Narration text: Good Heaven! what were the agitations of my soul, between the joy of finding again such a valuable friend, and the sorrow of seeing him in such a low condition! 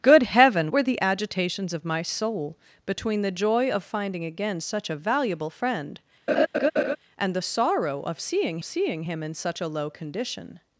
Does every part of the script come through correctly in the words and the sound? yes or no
no